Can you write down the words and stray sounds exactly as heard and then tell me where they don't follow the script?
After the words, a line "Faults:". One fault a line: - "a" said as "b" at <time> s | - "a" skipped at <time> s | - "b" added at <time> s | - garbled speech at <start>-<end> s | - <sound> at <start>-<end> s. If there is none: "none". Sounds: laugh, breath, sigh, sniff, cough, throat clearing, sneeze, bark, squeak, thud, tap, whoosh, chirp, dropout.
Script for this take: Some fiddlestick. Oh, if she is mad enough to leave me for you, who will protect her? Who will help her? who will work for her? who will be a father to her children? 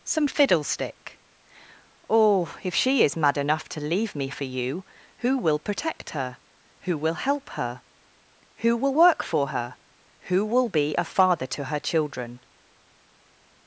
Some fiddlestick. Oh, if she is mad enough to leave me for you, who will protect her? Who will help her? who will work for her? who will be a father to her children?
Faults:
none